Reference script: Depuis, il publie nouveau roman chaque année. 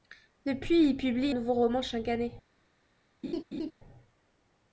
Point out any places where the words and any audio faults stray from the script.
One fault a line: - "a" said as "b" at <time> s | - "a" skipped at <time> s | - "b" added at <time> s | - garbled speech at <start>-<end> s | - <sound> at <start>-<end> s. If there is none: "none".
- laugh at 3.2-3.7 s